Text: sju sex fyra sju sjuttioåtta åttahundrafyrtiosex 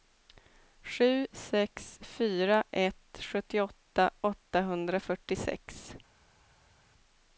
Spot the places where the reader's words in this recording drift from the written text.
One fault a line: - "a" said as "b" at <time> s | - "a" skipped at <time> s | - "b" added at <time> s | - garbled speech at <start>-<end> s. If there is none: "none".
- "sju" said as "ett" at 2.7 s